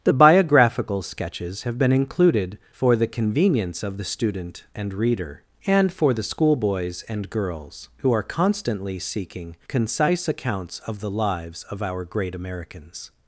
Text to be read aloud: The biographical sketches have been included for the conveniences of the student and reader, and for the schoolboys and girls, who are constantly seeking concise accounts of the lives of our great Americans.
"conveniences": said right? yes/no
no